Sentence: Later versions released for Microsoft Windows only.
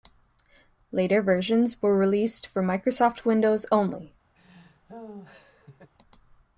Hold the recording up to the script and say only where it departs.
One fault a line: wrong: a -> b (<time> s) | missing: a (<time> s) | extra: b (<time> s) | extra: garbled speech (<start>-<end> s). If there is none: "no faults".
extra: were (1.8 s)